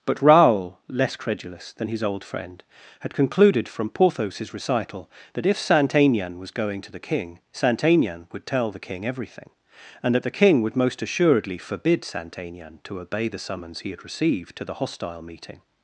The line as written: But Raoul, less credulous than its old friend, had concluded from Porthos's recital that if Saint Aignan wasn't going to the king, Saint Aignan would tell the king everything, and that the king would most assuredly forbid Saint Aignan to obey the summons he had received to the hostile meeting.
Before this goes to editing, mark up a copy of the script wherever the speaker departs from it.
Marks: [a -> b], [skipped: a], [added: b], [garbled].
But Raoul, less credulous than [its -> his] old friend, had concluded from Porthos's recital that if Saint Aignan [wasn't -> was] going to the king, Saint Aignan would tell the king everything, and that the king would most assuredly forbid Saint Aignan to obey the summons he had received to the hostile meeting.